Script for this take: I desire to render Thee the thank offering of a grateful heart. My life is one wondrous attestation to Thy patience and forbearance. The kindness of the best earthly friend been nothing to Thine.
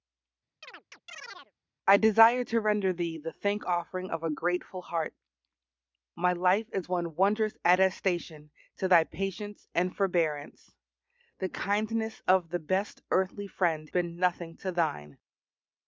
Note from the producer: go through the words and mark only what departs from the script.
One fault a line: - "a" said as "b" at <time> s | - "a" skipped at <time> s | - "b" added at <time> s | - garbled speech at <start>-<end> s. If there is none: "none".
none